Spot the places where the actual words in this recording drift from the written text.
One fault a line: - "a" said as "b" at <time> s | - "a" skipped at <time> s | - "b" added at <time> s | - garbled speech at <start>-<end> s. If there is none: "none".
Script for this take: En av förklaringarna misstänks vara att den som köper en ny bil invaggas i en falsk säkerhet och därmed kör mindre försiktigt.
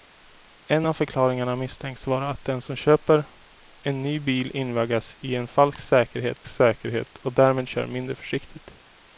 - "säkerhet" added at 6.5 s